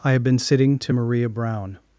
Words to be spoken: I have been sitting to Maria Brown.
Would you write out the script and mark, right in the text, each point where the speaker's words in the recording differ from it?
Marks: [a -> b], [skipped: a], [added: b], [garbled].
I have been sitting to Maria Brown.